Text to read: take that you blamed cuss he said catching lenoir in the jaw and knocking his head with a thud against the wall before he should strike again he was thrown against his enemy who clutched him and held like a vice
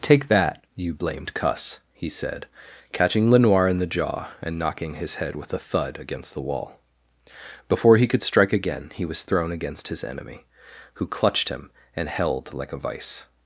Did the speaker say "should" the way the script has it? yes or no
no